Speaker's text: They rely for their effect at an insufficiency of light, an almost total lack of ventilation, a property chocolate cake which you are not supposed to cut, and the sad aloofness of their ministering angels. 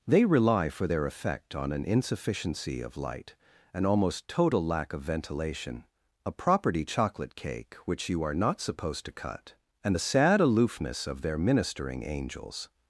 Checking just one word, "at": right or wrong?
wrong